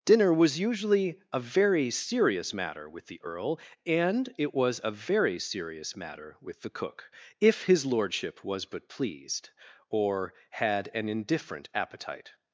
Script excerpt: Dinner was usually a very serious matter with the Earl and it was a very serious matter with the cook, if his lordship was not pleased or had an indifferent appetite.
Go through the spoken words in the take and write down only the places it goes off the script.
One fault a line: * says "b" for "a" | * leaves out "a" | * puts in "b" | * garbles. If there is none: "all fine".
* says "but" for "not"